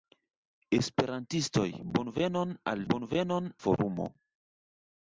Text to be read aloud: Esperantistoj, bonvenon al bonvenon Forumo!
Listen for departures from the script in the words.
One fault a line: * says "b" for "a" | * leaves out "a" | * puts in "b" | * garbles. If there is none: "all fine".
all fine